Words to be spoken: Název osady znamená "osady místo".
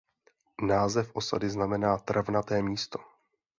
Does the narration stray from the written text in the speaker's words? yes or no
yes